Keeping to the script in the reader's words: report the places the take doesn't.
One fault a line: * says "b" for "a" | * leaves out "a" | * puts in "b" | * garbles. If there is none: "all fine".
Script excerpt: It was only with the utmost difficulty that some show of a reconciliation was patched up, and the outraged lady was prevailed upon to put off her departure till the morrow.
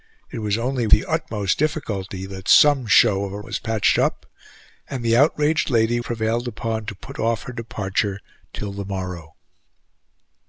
* leaves out "with"
* leaves out "reconciliation"
* leaves out "was"